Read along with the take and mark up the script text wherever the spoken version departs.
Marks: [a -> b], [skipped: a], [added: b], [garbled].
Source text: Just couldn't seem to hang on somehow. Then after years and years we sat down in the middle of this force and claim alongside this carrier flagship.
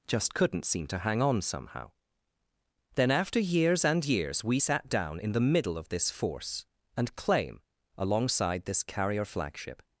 Just couldn't seem to hang on somehow. Then after years and years we sat down in the middle of this force and claim alongside this carrier flagship.